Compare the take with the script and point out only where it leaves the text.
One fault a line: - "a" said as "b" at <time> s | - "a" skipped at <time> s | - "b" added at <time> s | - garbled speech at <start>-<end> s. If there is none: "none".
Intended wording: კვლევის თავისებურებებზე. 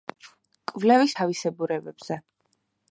none